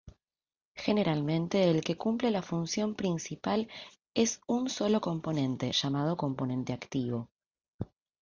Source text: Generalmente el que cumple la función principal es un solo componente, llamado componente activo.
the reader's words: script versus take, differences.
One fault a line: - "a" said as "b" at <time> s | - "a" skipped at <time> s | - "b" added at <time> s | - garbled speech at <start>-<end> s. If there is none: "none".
none